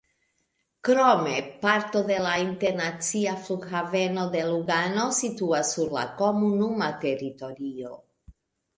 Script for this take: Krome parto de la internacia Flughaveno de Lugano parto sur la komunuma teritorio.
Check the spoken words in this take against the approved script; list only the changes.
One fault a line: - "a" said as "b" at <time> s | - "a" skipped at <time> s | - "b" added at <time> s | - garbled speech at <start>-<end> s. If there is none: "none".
- "parto" said as "situas" at 5.2 s